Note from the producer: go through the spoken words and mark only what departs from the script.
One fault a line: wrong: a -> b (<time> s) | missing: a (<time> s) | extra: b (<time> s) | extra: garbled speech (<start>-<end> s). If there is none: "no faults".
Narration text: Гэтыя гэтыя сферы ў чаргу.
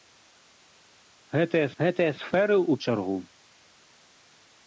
no faults